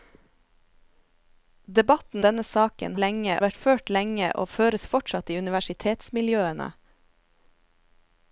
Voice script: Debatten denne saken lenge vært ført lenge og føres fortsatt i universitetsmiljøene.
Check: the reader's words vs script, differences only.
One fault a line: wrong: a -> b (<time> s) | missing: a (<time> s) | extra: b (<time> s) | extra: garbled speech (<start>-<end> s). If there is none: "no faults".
no faults